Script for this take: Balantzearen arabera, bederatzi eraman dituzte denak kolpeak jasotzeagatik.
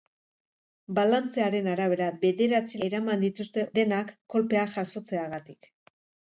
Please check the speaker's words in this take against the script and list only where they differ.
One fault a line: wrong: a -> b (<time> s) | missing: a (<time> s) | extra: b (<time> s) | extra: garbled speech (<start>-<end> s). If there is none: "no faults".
no faults